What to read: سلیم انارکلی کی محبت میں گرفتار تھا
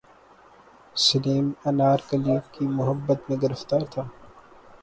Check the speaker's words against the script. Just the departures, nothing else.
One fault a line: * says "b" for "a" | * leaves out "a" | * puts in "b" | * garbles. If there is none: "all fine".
all fine